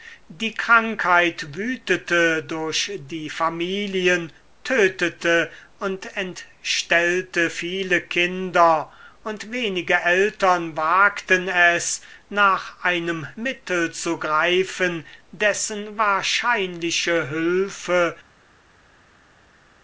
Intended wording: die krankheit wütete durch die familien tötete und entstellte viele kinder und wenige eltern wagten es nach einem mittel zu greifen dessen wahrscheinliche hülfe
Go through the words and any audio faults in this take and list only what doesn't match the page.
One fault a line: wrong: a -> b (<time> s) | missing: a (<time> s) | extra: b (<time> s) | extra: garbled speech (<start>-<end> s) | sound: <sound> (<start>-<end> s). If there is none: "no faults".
no faults